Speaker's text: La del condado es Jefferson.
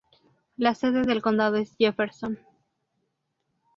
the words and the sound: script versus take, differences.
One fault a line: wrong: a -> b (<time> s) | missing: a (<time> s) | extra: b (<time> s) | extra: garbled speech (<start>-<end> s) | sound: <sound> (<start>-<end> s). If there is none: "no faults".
extra: sede (0.7 s)